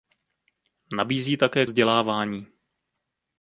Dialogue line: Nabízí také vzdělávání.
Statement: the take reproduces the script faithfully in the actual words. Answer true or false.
true